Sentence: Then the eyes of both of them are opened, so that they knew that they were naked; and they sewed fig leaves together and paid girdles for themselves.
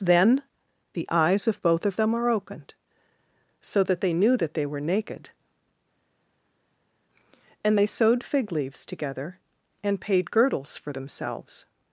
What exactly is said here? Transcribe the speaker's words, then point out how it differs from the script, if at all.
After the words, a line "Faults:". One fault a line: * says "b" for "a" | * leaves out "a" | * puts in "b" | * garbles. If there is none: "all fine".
Then the eyes of both of them are opened, so that they knew that they were naked; and they sewed fig leaves together and paid girdles for themselves.
Faults:
all fine